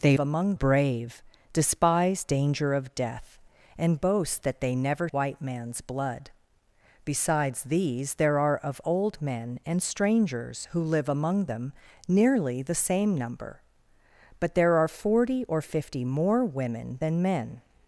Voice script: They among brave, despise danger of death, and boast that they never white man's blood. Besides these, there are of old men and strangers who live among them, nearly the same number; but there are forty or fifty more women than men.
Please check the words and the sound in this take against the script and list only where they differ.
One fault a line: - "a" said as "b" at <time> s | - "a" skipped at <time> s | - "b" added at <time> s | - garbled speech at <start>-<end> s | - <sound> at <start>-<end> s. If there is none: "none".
none